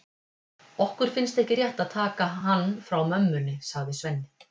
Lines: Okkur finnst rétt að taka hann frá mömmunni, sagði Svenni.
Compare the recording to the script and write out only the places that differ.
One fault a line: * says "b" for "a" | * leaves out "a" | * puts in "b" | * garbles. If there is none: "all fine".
* puts in "ekki"